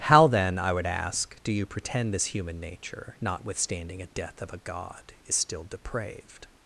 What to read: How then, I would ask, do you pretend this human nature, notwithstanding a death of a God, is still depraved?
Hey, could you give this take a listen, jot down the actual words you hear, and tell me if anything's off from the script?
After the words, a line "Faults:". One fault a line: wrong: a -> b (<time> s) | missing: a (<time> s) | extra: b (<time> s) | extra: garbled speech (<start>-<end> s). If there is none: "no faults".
How then, I would ask, do you pretend this human nature, notwithstanding a death of a God, is still depraved?
Faults:
no faults